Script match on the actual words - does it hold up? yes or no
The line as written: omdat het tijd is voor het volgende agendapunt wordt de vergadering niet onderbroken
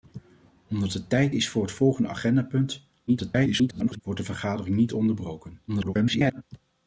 no